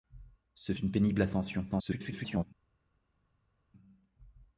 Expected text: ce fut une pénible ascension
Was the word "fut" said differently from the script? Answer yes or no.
yes